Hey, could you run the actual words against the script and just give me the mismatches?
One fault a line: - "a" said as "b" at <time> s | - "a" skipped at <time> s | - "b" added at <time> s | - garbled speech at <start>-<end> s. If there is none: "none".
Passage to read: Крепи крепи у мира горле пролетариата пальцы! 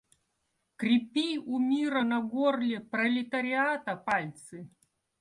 - "крепи" skipped at 1.4 s
- "на" added at 2.0 s